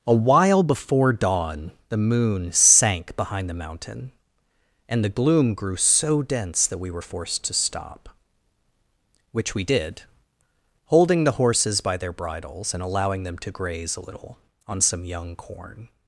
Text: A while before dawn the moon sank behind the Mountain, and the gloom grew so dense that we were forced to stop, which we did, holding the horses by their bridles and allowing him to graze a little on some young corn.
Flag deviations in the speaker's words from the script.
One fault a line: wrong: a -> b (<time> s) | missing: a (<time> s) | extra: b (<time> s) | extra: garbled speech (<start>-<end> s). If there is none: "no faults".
wrong: him -> them (13.2 s)